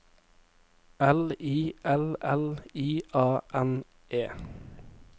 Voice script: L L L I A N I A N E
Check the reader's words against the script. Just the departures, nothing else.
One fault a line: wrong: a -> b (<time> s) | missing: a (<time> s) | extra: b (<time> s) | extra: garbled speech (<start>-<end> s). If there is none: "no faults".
extra: I (1.4 s)
missing: I A N (3.8 s)